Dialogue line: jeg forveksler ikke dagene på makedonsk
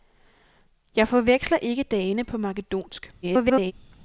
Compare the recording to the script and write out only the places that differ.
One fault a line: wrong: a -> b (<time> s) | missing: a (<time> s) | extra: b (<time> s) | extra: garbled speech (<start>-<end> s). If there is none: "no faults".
extra: garbled speech (3.2-3.7 s)